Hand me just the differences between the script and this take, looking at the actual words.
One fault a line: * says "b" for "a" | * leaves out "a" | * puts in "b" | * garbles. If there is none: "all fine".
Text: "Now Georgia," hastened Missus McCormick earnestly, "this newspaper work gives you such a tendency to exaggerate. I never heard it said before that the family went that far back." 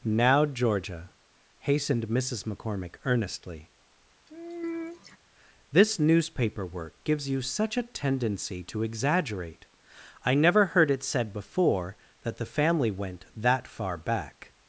all fine